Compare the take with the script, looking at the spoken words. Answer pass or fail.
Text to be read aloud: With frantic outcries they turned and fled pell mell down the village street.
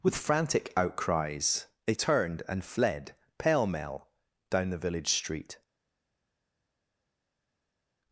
pass